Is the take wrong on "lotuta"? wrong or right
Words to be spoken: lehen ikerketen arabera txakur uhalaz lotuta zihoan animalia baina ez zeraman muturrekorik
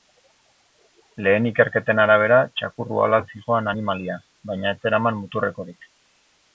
wrong